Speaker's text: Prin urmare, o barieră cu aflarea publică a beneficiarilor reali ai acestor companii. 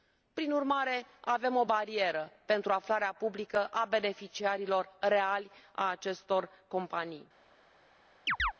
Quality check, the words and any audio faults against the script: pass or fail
fail